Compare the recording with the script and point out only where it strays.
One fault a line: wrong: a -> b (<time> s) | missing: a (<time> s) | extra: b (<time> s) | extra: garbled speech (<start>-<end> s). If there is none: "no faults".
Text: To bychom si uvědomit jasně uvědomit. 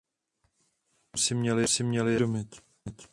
wrong: uvědomit -> měli (1.4 s)